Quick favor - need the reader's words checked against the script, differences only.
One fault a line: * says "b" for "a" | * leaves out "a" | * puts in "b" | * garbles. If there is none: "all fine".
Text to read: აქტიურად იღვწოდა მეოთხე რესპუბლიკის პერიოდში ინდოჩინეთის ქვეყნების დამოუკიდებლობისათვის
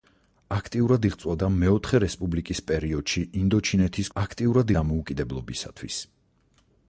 * says "აქტიურად" for "ქვეყნების"